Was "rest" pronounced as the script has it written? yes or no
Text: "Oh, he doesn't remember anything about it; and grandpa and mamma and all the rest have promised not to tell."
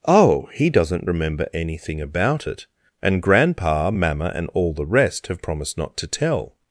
yes